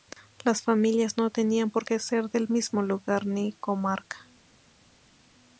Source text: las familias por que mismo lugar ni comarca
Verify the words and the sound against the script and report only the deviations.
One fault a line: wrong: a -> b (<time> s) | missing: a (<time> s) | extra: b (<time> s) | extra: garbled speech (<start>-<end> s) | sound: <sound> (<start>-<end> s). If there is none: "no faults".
extra: no tenían (1.2 s)
extra: ser del (2.0 s)